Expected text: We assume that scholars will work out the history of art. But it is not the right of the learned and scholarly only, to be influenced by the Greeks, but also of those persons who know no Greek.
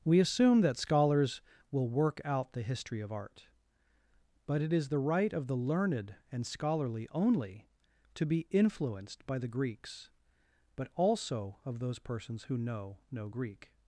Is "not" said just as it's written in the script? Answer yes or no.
no